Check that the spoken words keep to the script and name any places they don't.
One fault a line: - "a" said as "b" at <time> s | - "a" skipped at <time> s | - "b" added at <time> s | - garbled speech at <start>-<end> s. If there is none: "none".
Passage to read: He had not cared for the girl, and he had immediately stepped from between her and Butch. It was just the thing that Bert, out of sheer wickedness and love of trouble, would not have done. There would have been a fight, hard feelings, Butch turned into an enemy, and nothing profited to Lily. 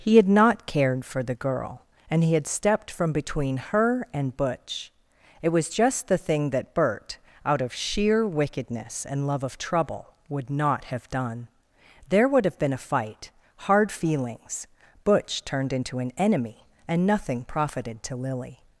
- "immediately" skipped at 2.5 s